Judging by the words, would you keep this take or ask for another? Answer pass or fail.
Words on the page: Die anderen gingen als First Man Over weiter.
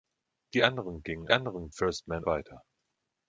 fail